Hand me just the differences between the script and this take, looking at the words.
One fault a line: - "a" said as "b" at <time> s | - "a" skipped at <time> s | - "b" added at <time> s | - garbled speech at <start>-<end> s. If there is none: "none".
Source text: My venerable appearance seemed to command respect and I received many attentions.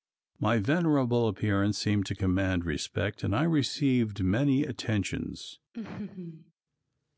none